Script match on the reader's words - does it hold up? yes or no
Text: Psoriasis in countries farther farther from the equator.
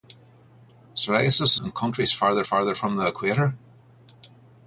yes